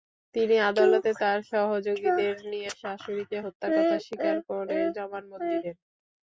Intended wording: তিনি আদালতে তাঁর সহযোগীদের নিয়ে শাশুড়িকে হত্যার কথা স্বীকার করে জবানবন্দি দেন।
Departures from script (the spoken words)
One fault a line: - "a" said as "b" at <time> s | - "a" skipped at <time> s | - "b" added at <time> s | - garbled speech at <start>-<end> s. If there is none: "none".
none